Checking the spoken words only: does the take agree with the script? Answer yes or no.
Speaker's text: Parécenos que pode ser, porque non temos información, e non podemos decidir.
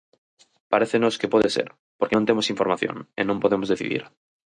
yes